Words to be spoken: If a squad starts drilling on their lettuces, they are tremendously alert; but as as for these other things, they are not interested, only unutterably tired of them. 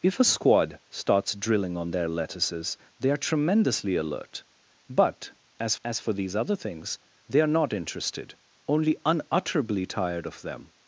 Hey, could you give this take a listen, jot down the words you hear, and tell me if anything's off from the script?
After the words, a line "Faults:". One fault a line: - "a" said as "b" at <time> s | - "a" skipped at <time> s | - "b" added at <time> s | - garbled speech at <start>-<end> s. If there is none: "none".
If a squad starts drilling on their lettuces, they are tremendously alert; but as as for these other things, they are not interested, only unutterably tired of them.
Faults:
none